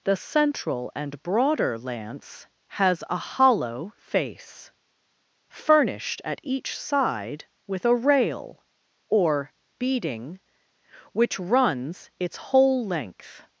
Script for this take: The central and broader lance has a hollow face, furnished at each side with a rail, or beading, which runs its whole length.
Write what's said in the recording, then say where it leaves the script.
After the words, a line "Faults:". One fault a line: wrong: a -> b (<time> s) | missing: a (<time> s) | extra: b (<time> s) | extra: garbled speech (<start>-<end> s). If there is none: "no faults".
The central and broader lance has a hollow face, furnished at each side with a rail, or beading, which runs its whole length.
Faults:
no faults